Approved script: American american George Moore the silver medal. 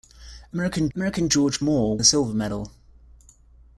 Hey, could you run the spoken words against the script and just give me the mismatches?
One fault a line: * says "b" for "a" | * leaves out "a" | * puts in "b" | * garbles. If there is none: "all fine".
all fine